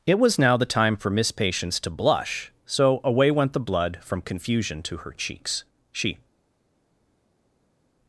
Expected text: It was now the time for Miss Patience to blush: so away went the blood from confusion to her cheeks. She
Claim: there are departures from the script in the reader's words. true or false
false